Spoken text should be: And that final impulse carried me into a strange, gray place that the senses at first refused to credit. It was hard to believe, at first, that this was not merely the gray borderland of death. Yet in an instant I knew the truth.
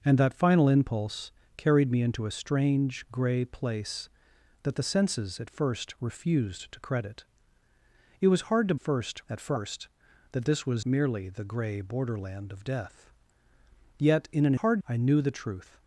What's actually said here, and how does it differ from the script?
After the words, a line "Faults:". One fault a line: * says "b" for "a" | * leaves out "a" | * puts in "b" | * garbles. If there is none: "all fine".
And that final impulse carried me into a strange, gray place that the senses at first refused to credit. It was hard to first, at first, that this was merely the gray borderland of death. Yet in an hard I knew the truth.
Faults:
* says "first" for "believe"
* leaves out "not"
* says "hard" for "instant"